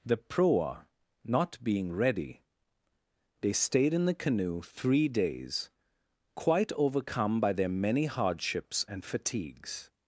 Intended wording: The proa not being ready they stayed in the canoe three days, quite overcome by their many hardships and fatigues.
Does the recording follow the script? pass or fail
pass